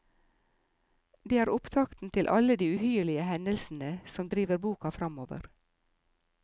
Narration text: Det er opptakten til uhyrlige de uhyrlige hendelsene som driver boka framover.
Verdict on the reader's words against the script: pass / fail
fail